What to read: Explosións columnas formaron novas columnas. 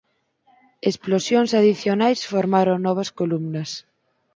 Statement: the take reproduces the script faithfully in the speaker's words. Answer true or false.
false